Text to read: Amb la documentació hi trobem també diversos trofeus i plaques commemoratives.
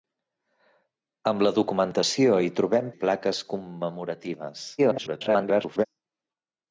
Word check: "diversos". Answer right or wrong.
wrong